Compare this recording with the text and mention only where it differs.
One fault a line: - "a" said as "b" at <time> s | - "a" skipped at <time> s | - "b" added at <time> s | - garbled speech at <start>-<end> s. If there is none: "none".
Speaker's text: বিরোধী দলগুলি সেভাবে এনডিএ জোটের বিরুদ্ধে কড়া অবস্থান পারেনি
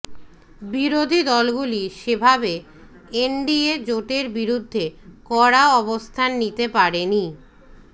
- "নিতে" added at 6.4 s